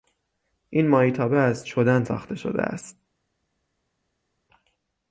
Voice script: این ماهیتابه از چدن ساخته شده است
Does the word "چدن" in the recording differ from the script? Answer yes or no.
no